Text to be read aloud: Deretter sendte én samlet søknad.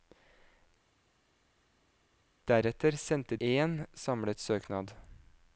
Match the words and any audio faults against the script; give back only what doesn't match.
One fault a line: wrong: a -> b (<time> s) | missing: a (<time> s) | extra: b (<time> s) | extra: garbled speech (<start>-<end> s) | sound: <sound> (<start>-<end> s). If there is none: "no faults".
no faults